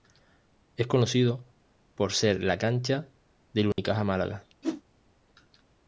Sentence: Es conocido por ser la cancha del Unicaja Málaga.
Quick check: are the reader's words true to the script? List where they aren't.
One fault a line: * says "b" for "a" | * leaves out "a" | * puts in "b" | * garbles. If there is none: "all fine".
all fine